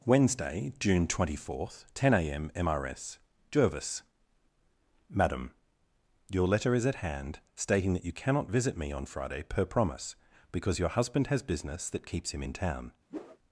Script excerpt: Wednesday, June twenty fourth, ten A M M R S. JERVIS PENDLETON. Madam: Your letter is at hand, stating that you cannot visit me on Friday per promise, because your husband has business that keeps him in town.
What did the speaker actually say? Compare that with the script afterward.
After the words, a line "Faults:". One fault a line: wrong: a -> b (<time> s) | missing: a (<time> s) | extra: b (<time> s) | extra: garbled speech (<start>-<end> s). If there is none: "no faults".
Wednesday, June twenty fourth, ten A M M R S. JERVIS. Madam: Your letter is at hand, stating that you cannot visit me on Friday per promise, because your husband has business that keeps him in town.
Faults:
missing: PENDLETON (4.0 s)